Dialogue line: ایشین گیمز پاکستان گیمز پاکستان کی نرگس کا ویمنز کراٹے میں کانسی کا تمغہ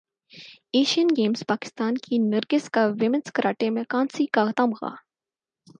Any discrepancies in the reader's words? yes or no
yes